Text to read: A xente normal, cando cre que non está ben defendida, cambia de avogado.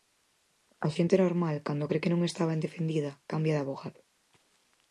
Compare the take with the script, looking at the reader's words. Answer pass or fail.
pass